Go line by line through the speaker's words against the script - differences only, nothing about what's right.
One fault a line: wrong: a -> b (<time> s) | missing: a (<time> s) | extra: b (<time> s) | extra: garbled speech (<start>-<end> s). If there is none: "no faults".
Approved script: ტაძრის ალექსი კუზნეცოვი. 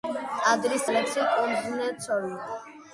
no faults